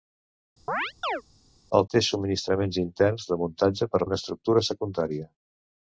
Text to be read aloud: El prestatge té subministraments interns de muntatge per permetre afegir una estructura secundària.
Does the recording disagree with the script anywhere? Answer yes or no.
yes